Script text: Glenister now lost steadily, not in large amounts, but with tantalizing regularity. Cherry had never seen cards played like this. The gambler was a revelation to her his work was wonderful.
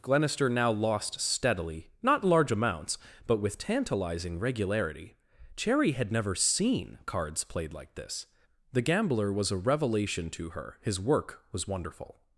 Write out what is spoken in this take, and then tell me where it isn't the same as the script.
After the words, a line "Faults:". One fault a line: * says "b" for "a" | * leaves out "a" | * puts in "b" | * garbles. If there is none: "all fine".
Glenister now lost steadily, not large amounts, but with tantalizing regularity. Cherry had never seen cards played like this. The gambler was a revelation to her his work was wonderful.
Faults:
* leaves out "in"